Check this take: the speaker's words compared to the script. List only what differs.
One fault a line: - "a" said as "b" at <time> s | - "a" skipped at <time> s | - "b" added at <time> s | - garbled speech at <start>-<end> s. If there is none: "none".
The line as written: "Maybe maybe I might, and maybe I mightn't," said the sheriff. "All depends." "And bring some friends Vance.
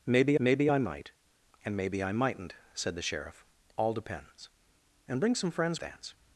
none